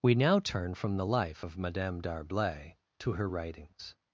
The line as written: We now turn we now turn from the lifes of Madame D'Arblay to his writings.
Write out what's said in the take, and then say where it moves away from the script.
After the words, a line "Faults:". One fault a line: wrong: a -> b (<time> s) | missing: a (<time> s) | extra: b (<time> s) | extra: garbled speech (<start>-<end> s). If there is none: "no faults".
We now turn from the life of Madame D'Arblay to her writings.
Faults:
missing: we now turn (0.7 s)
wrong: lifes -> life (1.0 s)
wrong: his -> her (3.1 s)